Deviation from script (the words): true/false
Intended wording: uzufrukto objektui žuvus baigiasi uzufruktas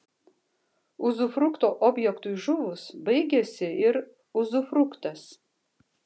true